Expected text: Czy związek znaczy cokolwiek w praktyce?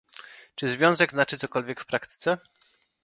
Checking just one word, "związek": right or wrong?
right